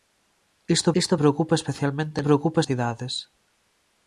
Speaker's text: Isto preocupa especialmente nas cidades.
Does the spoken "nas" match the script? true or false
false